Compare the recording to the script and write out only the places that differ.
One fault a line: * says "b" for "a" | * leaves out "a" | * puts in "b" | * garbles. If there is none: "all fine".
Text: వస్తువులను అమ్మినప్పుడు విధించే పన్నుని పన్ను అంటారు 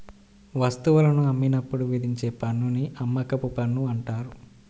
* puts in "అమ్మకపు"